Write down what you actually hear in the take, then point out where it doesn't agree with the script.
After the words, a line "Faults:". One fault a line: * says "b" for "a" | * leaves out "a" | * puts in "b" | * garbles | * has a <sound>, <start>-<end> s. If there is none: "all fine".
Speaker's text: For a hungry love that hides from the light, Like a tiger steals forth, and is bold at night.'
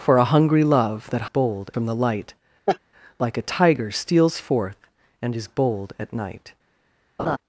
For a hungry love that bold from the light, Like a tiger steals forth, and is bold at night.'
Faults:
* says "bold" for "hides"
* has a laugh, 2.7-2.8 s
* has a laugh, 7.2-7.4 s